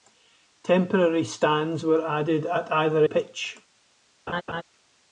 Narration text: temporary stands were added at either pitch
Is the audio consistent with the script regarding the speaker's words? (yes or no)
yes